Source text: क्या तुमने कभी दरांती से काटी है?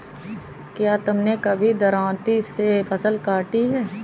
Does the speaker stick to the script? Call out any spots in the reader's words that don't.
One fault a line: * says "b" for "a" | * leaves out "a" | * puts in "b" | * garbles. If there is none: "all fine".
* puts in "फसल"